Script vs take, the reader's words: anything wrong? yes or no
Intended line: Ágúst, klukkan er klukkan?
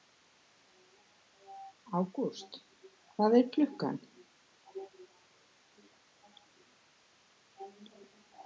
yes